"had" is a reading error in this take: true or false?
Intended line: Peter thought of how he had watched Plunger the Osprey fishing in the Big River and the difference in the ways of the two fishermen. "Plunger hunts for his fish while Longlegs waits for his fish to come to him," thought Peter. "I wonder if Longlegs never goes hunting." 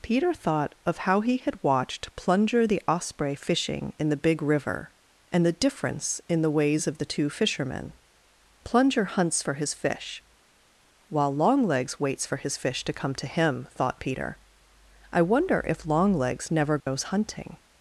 false